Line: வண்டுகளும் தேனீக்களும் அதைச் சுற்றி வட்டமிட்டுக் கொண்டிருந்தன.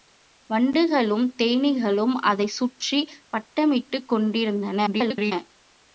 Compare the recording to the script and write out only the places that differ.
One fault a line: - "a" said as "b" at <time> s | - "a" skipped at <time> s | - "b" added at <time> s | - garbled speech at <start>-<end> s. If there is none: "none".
- garbled speech at 4.9-5.3 s